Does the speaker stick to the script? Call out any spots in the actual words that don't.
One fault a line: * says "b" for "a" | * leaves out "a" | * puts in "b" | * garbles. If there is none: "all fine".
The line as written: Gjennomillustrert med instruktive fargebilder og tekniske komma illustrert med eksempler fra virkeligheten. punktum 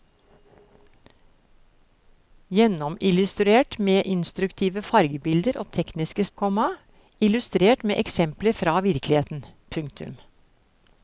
all fine